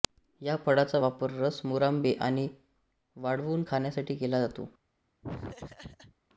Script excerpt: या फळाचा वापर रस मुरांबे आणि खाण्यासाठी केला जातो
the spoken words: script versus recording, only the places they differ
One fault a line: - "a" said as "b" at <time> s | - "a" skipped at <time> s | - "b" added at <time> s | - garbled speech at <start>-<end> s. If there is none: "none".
- "वाळवून" added at 3.2 s